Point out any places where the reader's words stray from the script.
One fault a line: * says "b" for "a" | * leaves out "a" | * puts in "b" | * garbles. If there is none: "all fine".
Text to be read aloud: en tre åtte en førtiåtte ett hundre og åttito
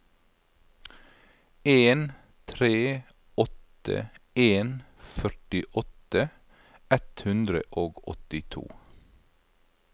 all fine